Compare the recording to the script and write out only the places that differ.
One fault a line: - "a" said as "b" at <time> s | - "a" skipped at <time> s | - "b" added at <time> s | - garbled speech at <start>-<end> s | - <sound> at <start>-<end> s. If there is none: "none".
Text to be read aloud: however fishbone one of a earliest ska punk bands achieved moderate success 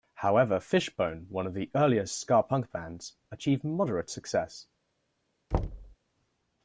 - "a" said as "the" at 1.5 s
- thud at 5.5-6.0 s